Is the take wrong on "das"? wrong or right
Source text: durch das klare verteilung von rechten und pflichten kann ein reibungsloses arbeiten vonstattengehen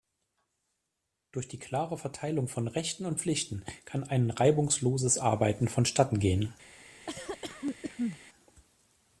wrong